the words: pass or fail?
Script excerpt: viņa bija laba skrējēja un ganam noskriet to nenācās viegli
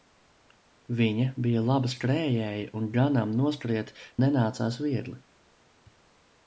fail